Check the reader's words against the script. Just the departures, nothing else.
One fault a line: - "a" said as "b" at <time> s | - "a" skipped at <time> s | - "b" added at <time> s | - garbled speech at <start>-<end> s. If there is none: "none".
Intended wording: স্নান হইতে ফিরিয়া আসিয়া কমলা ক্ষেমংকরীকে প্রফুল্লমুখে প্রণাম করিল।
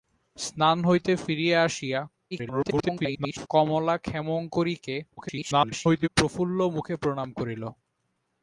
- garbled speech at 2.3-3.5 s
- garbled speech at 5.2-6.1 s